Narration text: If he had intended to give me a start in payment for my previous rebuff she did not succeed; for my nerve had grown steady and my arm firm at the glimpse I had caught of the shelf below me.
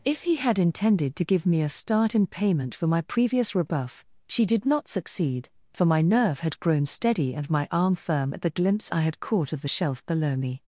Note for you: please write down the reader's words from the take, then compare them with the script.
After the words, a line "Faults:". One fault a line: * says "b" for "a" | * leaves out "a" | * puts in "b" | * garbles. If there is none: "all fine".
If he had intended to give me a start in payment for my previous rebuff she did not succeed; for my nerve had grown steady and my arm firm at the glimpse I had caught of the shelf below me.
Faults:
all fine